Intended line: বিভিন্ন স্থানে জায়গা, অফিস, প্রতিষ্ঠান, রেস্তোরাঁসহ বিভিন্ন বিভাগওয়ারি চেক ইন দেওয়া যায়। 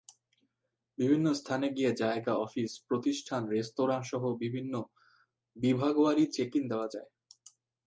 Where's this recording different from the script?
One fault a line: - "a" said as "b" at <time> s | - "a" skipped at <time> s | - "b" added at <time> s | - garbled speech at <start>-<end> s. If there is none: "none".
- "গিয়ে" added at 1.7 s